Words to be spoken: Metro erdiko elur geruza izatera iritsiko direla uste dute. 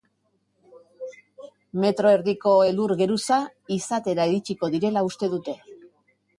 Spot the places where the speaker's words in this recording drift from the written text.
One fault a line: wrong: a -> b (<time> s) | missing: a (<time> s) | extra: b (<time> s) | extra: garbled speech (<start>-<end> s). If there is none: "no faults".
no faults